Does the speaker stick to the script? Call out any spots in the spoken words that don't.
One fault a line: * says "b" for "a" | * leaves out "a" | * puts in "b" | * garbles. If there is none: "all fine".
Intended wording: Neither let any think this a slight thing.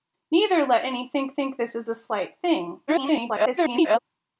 * puts in "think"
* garbles